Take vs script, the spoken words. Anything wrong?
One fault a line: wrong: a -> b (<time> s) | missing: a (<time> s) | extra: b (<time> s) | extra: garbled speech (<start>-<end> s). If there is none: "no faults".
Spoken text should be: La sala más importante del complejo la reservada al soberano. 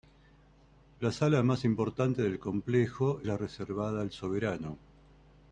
no faults